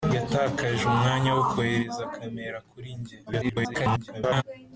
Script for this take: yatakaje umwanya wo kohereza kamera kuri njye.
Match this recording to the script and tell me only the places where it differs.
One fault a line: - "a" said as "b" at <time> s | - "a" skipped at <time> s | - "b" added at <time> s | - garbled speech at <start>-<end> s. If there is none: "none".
- garbled speech at 3.3-4.4 s